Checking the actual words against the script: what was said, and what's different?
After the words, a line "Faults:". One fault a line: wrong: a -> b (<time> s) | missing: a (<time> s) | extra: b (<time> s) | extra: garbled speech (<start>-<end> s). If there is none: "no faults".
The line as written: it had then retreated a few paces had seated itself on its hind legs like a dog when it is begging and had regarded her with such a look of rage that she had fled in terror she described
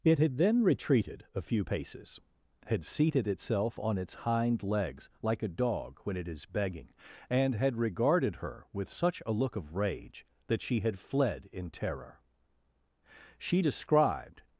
it had then retreated a few paces had seated itself on its hind legs like a dog when it is begging and had regarded her with such a look of rage that she had fled in terror she described
Faults:
no faults